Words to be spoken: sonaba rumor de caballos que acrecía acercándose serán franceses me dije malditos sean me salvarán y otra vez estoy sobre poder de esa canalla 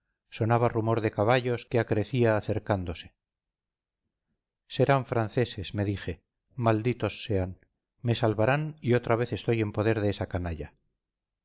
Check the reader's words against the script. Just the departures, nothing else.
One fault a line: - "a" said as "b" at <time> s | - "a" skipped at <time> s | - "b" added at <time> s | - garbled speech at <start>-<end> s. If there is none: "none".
- "sobre" said as "en" at 9.6 s